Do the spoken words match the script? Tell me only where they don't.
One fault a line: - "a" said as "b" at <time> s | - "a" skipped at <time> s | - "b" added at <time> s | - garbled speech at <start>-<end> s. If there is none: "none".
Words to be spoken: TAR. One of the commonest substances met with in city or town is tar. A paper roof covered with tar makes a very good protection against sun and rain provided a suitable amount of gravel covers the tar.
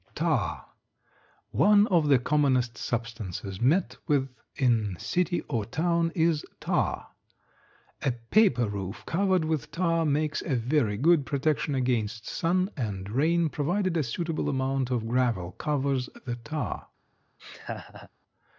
none